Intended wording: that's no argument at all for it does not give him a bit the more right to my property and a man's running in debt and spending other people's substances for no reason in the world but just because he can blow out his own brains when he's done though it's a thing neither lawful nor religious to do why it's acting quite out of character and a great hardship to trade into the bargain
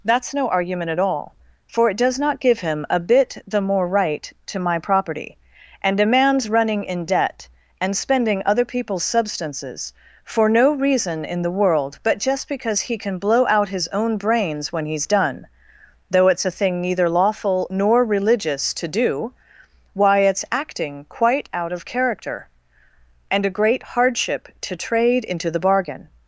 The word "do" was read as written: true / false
true